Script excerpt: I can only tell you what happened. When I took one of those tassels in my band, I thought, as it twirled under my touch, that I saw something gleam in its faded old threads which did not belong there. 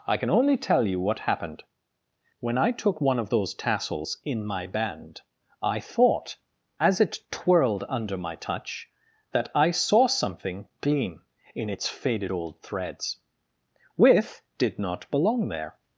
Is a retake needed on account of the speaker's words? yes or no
yes